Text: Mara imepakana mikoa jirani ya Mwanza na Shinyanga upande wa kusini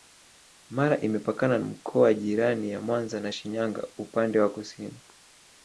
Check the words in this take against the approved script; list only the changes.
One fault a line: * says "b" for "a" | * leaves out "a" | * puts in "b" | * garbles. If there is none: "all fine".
all fine